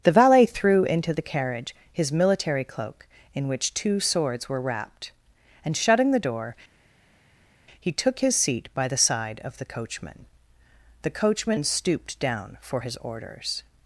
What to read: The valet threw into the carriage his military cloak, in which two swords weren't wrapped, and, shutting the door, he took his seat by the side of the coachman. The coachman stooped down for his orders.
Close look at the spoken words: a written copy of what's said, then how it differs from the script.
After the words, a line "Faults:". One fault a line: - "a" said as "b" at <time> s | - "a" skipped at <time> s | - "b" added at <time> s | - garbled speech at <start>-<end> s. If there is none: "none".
The valet threw into the carriage his military cloak, in which two swords were wrapped, and, shutting the door, he took his seat by the side of the coachman. The coachman stooped down for his orders.
Faults:
- "weren't" said as "were" at 4.5 s